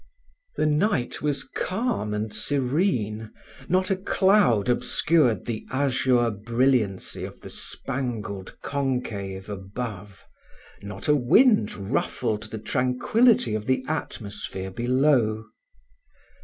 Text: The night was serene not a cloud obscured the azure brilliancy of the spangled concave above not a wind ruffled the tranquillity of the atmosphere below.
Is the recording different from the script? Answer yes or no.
yes